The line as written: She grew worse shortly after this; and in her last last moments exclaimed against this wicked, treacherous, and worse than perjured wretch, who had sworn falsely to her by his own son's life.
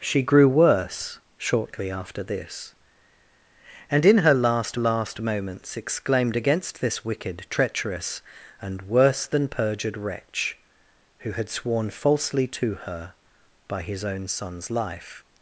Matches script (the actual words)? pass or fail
pass